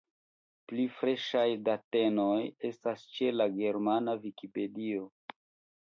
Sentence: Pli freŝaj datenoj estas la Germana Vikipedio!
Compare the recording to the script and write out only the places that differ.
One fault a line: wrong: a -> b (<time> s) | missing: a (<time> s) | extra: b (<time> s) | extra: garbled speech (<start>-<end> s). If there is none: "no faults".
extra: ĉe (3.2 s)